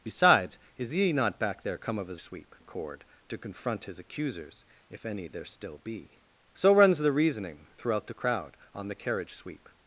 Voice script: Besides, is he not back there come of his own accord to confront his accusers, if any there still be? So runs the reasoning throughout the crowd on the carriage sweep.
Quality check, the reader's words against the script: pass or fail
fail